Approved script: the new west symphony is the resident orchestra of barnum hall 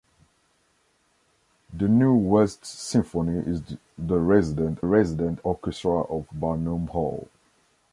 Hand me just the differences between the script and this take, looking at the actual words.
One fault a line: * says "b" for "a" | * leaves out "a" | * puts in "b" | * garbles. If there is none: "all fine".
* puts in "resident"